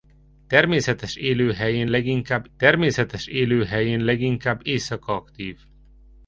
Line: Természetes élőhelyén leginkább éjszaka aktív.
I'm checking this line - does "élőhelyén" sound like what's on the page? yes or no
yes